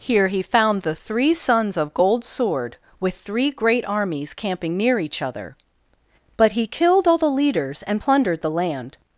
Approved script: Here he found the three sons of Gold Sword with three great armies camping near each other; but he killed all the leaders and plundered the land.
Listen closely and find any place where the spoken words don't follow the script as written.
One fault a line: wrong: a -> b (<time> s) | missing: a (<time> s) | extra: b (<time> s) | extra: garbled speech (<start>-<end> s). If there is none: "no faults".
no faults